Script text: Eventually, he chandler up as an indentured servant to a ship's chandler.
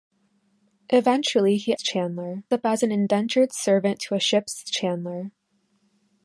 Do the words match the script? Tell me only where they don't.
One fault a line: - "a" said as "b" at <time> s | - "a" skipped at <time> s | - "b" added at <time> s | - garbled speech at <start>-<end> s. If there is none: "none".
none